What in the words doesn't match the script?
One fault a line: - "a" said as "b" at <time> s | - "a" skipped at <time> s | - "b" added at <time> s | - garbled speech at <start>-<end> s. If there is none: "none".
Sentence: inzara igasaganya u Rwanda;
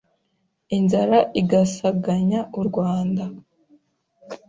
none